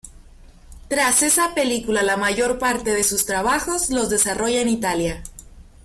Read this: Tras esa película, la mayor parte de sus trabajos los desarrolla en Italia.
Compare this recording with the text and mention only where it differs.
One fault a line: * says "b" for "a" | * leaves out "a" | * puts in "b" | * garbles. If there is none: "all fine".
all fine